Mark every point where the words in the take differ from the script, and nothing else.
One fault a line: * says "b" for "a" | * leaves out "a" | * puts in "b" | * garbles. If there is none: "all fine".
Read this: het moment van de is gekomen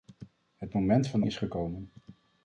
all fine